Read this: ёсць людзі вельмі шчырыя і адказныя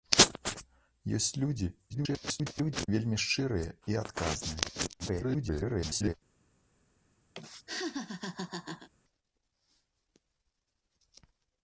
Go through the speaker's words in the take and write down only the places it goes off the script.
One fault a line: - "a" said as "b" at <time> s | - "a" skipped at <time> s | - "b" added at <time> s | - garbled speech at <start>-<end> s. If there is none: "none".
- garbled speech at 1.9-2.9 s
- garbled speech at 5.0-6.1 s